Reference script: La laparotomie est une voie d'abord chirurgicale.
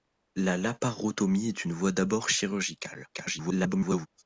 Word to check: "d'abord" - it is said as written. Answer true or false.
true